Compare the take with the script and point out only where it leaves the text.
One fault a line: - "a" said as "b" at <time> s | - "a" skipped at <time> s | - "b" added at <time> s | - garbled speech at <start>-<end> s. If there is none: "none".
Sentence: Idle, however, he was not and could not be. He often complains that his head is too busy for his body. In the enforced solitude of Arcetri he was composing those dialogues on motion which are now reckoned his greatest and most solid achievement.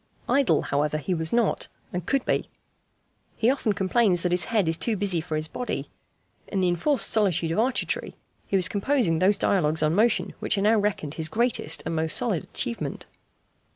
- "not" skipped at 2.2 s